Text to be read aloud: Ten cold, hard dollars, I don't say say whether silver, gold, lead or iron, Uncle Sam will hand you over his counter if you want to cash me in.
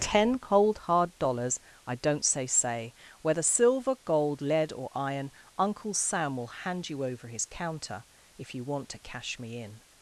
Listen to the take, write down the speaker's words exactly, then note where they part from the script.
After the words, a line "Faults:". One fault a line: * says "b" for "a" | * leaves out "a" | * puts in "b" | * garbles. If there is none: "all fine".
Ten cold, hard dollars, I don't say say whether silver, gold, lead or iron, Uncle Sam will hand you over his counter if you want to cash me in.
Faults:
all fine